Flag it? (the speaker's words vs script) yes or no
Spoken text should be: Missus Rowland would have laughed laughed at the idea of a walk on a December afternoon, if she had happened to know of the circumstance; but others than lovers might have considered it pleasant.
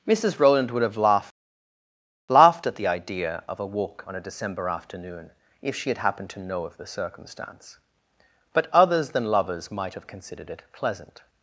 no